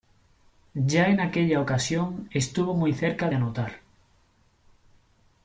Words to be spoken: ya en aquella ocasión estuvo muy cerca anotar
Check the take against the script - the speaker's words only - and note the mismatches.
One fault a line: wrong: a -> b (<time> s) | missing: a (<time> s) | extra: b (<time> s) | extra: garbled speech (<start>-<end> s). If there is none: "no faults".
no faults